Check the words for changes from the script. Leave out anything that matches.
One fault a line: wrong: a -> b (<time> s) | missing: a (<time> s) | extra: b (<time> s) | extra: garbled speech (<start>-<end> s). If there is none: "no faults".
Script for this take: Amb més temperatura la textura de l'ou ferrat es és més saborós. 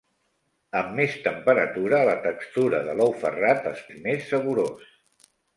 no faults